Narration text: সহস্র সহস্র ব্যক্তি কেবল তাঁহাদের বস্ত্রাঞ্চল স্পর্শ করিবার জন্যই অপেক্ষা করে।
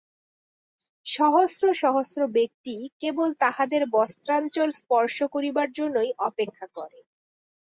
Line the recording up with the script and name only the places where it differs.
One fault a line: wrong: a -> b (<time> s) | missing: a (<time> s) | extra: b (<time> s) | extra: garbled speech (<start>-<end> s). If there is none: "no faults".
no faults